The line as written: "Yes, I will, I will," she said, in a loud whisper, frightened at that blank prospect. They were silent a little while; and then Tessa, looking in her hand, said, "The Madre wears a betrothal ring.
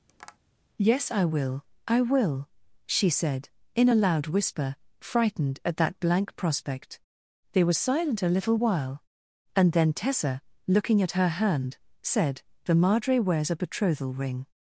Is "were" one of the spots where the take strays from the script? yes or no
no